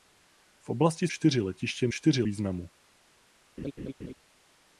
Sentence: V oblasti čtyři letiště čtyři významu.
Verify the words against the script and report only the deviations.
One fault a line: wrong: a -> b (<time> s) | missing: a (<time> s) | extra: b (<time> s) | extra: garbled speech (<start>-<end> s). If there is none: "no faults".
no faults